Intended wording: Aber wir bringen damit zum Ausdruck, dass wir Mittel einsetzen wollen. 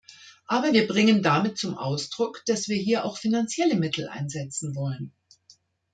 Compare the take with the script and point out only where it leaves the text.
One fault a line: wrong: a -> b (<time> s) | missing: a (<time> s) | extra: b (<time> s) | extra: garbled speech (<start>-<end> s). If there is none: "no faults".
extra: hier auch finanzielle (2.8 s)